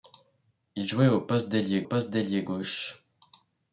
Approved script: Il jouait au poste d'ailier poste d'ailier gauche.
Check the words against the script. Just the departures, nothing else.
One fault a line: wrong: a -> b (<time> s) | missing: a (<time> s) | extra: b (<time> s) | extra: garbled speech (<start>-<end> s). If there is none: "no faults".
no faults